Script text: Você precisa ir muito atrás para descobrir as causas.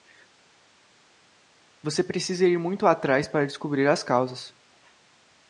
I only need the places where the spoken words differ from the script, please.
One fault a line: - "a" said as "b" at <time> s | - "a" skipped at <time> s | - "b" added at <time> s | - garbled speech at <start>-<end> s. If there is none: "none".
none